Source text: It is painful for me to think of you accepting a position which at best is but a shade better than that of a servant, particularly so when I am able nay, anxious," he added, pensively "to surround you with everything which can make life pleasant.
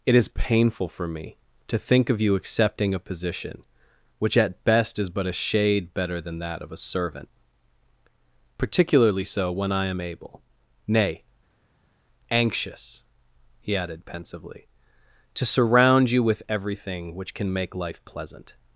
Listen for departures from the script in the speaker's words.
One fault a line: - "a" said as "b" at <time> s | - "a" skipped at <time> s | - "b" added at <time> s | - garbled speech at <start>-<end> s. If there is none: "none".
none